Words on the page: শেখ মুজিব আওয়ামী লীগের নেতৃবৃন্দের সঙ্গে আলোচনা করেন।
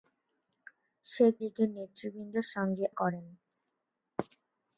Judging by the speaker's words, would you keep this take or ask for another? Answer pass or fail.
fail